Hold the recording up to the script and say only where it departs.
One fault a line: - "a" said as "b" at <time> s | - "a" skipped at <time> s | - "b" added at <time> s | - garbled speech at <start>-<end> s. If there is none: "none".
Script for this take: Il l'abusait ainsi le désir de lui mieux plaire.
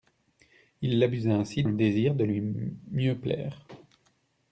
none